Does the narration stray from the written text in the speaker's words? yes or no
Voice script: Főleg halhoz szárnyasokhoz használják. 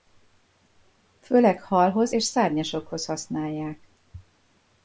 yes